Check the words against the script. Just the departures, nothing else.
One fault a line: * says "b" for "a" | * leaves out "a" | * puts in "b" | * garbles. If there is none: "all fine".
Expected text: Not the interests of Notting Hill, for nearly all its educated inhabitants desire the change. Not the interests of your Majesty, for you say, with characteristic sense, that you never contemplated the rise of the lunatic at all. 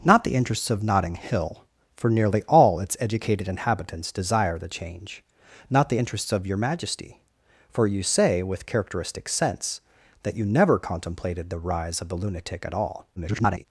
* garbles